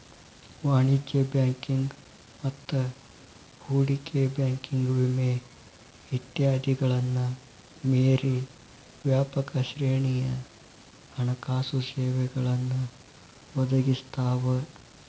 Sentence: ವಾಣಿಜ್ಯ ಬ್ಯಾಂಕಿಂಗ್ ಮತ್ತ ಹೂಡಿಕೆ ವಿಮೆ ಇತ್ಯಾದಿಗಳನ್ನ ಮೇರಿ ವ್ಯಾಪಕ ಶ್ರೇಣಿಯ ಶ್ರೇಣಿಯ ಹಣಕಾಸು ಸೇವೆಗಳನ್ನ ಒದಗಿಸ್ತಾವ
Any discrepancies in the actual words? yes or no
yes